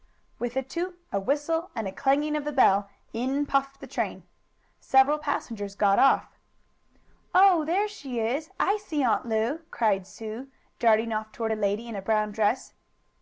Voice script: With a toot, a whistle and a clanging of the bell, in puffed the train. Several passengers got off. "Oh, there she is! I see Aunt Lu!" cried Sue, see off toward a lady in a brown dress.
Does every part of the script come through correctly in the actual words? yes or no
no